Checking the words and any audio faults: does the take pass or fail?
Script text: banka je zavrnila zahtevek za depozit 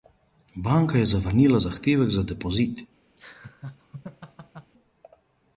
fail